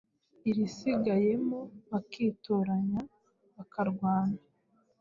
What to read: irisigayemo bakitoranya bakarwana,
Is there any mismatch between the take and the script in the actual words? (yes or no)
no